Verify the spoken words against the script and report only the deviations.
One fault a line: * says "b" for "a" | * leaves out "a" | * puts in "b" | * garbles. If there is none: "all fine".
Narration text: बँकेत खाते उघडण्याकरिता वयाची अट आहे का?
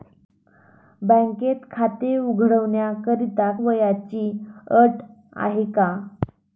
all fine